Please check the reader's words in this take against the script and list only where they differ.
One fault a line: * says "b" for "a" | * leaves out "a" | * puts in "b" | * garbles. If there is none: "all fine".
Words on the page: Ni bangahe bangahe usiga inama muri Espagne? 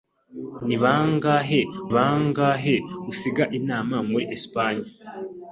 all fine